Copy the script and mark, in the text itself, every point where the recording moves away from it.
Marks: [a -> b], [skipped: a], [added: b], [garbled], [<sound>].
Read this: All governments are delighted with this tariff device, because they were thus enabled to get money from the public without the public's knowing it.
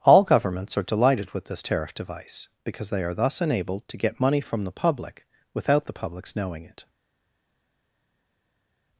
All governments are delighted with this tariff device, because they [were -> are] thus enabled to get money from the public without the public's knowing it.